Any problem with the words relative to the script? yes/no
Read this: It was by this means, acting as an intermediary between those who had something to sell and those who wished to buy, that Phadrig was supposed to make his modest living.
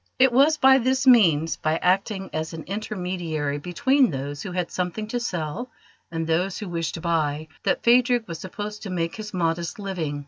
yes